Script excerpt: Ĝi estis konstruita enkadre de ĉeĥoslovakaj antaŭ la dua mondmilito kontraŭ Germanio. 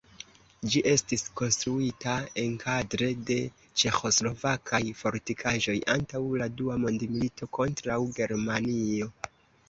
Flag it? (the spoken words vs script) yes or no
yes